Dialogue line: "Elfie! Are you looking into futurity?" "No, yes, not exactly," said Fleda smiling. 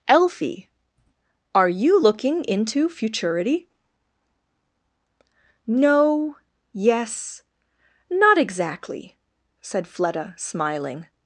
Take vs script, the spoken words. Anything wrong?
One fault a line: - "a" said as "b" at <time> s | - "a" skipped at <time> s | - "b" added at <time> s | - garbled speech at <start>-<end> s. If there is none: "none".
none